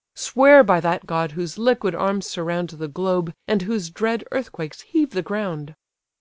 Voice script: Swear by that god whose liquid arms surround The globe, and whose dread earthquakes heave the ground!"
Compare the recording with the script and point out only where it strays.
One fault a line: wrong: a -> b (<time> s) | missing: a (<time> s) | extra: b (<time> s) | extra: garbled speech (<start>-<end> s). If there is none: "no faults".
no faults